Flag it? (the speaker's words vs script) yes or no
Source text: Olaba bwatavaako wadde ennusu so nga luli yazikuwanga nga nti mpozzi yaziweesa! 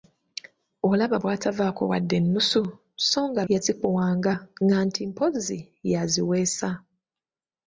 yes